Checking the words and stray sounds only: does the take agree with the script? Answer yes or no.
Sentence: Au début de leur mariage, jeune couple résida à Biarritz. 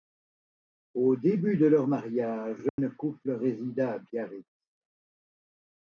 no